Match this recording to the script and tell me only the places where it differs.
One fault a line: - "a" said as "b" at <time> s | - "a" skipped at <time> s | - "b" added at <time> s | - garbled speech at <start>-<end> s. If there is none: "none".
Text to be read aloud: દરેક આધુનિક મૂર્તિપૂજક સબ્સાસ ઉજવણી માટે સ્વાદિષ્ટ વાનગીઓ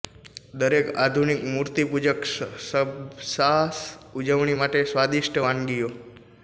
none